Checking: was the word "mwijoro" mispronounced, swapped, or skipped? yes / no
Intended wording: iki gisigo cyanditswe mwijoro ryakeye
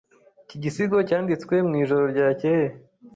no